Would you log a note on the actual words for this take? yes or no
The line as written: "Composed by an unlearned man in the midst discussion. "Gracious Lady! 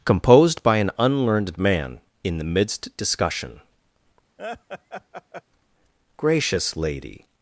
no